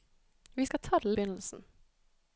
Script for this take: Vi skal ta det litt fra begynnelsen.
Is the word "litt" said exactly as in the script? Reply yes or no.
no